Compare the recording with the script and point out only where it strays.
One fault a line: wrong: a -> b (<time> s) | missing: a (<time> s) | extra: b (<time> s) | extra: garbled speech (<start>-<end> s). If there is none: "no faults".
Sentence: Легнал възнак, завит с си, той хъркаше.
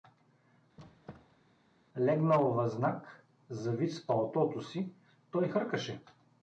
extra: палтото (4.1 s)